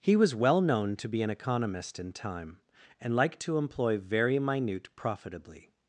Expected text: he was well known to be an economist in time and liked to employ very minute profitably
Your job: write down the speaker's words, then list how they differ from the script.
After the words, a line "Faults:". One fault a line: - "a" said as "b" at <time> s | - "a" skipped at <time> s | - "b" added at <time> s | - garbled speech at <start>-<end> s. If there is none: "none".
he was well known to be an economist in time and liked to employ very minute profitably
Faults:
none